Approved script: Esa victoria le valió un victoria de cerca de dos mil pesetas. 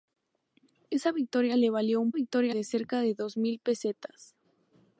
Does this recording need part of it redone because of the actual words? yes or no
no